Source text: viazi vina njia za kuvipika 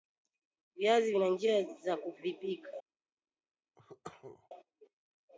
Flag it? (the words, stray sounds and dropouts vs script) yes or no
yes